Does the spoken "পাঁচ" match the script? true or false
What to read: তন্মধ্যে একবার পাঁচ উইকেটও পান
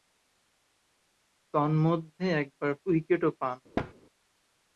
false